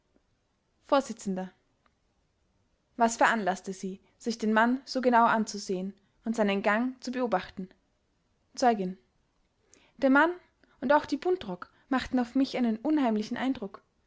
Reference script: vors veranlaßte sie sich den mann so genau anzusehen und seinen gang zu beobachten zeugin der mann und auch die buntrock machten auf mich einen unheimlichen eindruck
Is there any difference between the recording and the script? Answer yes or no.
yes